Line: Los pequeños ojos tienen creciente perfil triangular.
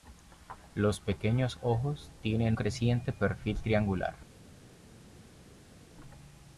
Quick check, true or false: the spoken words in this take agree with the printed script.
true